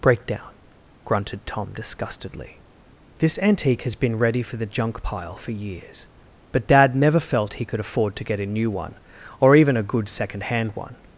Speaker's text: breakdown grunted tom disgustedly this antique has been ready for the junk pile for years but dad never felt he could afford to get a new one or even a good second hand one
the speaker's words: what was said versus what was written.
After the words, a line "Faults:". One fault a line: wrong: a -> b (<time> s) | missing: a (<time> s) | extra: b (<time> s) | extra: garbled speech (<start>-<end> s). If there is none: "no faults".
breakdown grunted tom disgustedly this antique has been ready for the junk pile for years but dad never felt he could afford to get a new one or even a good second hand one
Faults:
no faults